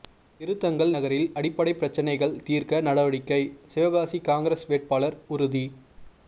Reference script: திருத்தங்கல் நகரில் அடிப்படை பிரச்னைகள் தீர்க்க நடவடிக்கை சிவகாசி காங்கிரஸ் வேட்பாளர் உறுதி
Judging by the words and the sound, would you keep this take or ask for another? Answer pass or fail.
pass